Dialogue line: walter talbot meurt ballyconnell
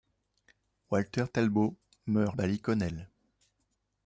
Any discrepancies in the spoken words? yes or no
no